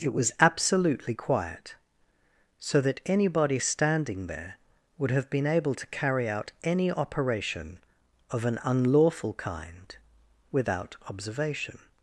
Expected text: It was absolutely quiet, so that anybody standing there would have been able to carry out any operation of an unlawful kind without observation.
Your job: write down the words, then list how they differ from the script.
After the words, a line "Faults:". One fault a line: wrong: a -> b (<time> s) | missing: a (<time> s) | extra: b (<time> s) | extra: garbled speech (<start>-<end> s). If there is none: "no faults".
It was absolutely quiet, so that anybody standing there would have been able to carry out any operation of an unlawful kind without observation.
Faults:
no faults